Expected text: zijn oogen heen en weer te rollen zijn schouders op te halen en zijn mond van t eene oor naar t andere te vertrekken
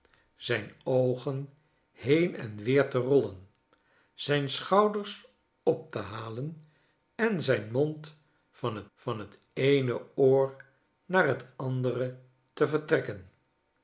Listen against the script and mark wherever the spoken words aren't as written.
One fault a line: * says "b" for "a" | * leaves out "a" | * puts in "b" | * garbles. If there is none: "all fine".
* puts in "van"